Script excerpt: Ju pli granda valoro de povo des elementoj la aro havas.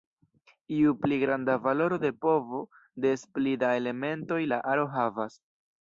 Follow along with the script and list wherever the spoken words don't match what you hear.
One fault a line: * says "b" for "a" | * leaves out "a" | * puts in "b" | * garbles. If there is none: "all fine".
* puts in "pli da"